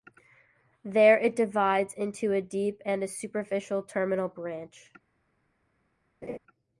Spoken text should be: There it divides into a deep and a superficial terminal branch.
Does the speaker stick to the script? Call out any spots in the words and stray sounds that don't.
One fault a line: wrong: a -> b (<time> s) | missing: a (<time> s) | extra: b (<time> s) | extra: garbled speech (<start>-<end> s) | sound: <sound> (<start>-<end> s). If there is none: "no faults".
sound: laugh (6.2-6.4 s)